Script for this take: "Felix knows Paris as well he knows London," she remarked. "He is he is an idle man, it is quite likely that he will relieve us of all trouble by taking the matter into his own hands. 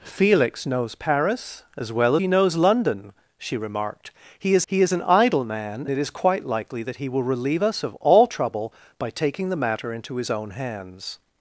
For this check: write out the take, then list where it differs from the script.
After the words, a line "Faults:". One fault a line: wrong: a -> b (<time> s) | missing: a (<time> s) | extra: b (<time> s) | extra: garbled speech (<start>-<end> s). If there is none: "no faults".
"Felix knows Paris as well he knows London," she remarked. "He is he is an idle man, it is quite likely that he will relieve us of all trouble by taking the matter into his own hands.
Faults:
no faults